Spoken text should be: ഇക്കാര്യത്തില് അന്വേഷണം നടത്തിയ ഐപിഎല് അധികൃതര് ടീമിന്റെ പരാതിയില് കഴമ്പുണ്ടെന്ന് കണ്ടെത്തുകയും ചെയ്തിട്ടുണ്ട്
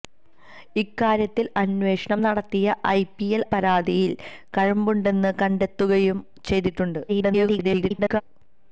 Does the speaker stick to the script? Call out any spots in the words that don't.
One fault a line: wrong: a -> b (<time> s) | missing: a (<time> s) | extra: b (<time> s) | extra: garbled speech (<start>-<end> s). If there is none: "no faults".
missing: അധികൃതര് ടീമിന്റെ (3.5 s)
extra: garbled speech (7.1-8.2 s)